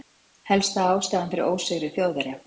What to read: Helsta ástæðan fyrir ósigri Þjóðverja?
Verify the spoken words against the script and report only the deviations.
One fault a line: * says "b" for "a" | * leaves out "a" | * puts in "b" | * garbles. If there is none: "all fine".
all fine